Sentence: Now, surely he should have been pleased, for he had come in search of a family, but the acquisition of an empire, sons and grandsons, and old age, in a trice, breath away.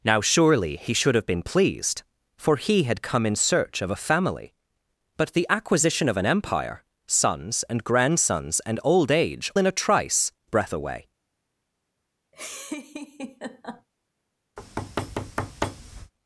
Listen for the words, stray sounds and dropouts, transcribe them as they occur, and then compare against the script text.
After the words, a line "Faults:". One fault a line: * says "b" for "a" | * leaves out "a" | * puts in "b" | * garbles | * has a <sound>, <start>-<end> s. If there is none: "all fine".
Now, surely he should have been pleased, for he had come in search of a family, but the acquisition of an empire, sons and grandsons, and old age, in a trice, breath away.
Faults:
* has a laugh, 12.3-13.9 s
* has a thud, 14.6-16.1 s